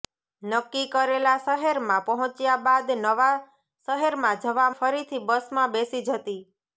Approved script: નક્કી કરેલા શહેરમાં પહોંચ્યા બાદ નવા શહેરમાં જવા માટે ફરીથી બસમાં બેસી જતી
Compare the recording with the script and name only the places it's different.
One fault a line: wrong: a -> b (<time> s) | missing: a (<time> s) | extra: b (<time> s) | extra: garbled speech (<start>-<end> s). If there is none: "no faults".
missing: માટે (4.7 s)